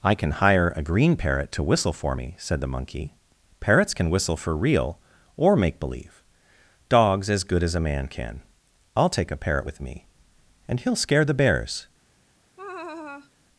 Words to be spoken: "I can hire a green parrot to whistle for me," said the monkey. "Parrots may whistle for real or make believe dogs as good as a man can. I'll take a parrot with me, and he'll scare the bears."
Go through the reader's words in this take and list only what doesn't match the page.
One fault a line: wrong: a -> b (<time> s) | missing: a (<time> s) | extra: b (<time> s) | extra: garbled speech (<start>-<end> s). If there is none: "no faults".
wrong: may -> can (3.9 s)